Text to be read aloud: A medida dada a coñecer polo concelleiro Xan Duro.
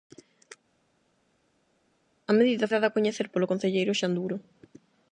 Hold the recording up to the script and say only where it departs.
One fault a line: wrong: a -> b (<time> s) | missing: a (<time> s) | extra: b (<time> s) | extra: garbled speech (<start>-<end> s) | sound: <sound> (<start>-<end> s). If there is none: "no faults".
no faults